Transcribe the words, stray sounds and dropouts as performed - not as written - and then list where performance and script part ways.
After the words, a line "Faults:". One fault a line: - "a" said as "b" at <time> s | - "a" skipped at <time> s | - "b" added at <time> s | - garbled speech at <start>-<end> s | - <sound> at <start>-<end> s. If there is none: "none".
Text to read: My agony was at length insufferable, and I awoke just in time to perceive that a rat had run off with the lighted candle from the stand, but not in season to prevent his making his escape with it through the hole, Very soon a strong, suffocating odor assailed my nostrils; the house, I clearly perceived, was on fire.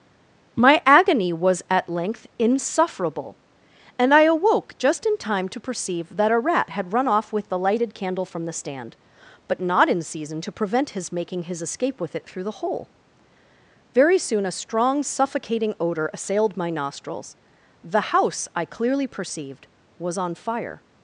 My agony was at length insufferable, and I awoke just in time to perceive that a rat had run off with the lighted candle from the stand, but not in season to prevent his making his escape with it through the hole, Very soon a strong, suffocating odor assailed my nostrils; the house, I clearly perceived, was on fire.
Faults:
none